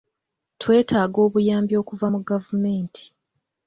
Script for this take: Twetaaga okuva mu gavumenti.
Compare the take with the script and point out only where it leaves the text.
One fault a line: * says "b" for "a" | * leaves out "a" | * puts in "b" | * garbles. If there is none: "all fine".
* puts in "obuyambi"